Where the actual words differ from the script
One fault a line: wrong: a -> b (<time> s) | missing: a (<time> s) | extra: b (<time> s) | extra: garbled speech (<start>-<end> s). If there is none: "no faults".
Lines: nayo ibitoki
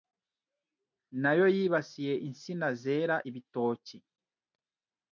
extra: yibasiye insina zera (1.6 s)